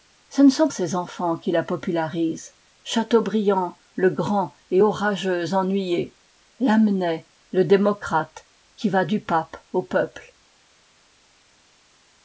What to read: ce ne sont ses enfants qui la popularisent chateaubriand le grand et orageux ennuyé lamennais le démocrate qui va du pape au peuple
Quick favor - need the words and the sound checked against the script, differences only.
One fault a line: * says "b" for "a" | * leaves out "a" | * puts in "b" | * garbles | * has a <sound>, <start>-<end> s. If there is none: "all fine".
all fine